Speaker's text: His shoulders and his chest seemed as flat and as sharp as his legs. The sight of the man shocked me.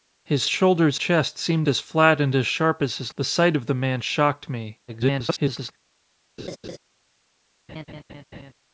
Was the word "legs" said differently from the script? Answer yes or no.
yes